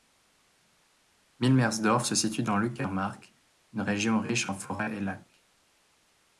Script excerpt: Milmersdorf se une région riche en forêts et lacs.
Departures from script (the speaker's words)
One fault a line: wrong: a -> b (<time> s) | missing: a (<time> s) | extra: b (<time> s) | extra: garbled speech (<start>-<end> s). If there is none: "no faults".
extra: situe dans l'Uckermark (2.1 s)